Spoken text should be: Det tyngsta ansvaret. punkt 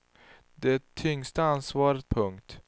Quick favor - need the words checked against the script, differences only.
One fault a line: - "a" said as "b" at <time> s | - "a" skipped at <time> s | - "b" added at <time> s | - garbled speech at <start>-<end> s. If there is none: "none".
none